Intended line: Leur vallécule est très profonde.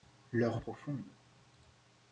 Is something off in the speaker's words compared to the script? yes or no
yes